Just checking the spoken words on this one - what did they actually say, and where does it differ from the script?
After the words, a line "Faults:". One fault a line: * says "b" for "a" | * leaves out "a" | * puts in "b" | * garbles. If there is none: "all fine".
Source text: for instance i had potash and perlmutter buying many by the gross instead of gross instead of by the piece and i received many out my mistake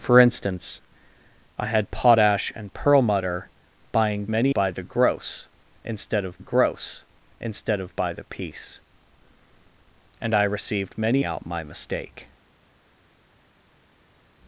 for instance i had potash and perlmutter buying many by the gross instead of gross instead of by the piece and i received many out my mistake
Faults:
all fine